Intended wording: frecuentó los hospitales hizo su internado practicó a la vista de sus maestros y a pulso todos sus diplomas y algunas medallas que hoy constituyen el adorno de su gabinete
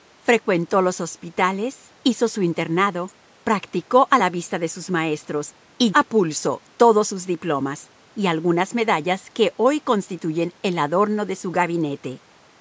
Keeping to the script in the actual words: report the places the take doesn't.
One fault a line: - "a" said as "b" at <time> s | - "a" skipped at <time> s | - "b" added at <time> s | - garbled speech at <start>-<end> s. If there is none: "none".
none